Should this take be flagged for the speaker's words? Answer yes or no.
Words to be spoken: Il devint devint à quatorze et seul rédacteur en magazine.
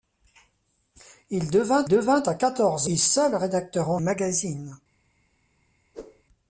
no